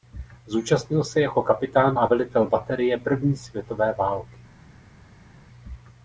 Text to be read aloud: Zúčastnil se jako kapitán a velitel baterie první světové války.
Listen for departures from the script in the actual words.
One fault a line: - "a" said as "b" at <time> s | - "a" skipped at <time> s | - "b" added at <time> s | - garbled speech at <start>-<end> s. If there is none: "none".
none